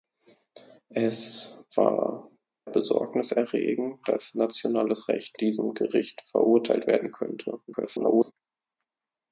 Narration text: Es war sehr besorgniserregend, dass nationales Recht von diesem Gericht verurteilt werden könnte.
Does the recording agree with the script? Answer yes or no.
no